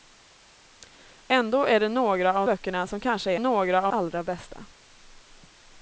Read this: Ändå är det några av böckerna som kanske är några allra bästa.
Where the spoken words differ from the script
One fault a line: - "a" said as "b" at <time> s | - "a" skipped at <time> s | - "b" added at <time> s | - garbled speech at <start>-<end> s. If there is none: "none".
none